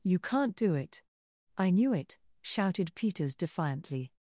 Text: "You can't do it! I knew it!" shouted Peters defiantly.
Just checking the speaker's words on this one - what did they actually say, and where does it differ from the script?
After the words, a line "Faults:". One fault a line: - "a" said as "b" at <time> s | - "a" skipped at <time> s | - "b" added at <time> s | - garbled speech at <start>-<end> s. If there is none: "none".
"You can't do it! I knew it!" shouted Peters defiantly.
Faults:
none